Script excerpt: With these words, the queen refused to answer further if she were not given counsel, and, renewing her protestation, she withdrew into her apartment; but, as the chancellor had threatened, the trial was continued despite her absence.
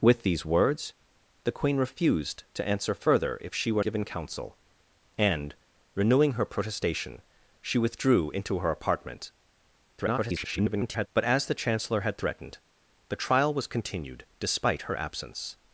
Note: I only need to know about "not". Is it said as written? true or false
false